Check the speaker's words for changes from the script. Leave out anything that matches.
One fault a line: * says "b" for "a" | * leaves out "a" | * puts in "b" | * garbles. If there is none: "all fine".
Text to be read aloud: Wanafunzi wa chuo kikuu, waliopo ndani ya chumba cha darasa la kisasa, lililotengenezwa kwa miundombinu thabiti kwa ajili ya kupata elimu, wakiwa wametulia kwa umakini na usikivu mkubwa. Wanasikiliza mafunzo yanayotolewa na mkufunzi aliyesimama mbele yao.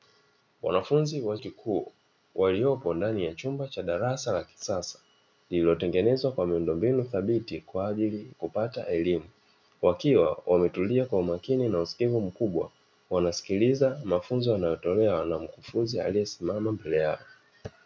* leaves out "chuo"
* leaves out "ya"